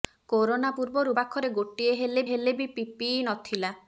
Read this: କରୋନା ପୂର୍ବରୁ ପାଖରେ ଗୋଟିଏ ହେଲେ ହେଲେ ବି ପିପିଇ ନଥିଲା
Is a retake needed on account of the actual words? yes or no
no